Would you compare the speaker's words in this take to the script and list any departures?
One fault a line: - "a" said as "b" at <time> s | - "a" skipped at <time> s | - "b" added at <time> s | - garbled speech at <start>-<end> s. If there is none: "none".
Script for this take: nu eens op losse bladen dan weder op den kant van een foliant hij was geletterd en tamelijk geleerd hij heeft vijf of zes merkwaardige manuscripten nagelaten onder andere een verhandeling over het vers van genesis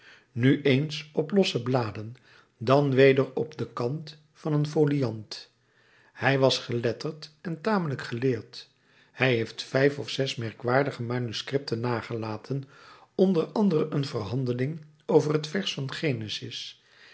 none